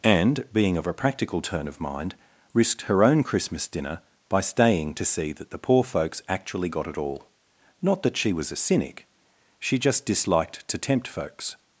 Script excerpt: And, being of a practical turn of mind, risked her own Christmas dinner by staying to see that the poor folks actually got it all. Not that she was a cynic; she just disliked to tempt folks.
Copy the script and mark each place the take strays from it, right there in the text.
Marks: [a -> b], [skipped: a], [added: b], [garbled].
And, being of a practical turn of mind, risked her own Christmas dinner by staying to see that the poor folks actually got it all. Not that she was a cynic; she just disliked to tempt folks.